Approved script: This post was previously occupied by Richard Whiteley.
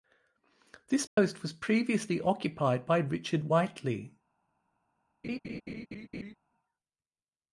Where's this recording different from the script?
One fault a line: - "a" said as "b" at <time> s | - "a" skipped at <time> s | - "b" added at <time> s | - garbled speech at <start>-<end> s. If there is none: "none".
none